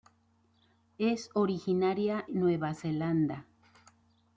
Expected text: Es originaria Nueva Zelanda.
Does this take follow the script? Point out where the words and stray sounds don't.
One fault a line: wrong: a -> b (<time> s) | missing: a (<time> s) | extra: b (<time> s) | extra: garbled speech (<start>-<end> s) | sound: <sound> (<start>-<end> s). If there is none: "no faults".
no faults